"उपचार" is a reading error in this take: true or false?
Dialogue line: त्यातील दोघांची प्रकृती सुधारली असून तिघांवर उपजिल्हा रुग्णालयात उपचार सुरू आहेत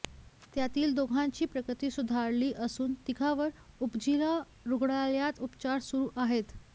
false